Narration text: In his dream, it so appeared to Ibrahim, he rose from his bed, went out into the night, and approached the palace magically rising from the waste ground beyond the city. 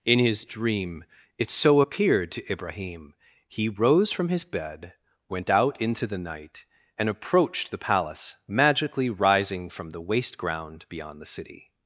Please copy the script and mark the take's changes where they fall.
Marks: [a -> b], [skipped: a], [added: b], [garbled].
In his dream, it so appeared to Ibrahim, he rose from his bed, went out into the night, and approached the palace magically rising from the waste ground beyond the city.